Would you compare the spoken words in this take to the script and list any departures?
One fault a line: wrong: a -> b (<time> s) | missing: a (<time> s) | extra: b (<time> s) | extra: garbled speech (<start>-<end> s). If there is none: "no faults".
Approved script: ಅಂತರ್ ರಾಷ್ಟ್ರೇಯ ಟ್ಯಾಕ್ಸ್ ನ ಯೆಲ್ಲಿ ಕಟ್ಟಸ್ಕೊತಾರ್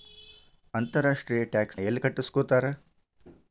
missing: ನ (1.8 s)